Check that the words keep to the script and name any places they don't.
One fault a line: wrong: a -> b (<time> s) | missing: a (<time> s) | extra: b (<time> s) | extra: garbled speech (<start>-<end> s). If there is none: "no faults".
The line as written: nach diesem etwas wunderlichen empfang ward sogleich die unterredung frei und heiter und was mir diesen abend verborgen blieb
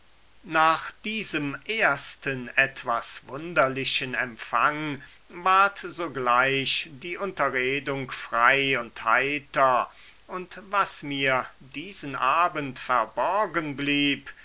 extra: ersten (1.7 s)